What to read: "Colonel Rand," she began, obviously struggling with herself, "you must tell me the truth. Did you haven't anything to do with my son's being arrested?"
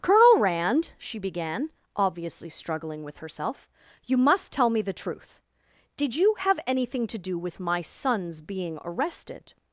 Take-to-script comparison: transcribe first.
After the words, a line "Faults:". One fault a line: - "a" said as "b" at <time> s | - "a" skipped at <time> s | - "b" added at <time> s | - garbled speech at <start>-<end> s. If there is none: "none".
"Colonel Rand," she began, obviously struggling with herself, "you must tell me the truth. Did you have anything to do with my son's being arrested?"
Faults:
- "haven't" said as "have" at 6.4 s